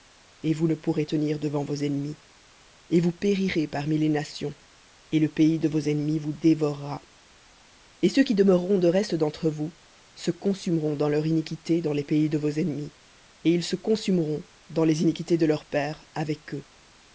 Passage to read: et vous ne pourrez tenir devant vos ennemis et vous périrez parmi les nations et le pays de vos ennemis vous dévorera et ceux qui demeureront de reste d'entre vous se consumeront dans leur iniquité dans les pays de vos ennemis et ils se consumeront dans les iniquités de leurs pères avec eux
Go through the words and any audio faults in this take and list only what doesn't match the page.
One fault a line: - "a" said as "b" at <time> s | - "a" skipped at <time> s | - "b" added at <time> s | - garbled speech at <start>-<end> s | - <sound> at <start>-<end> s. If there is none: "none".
none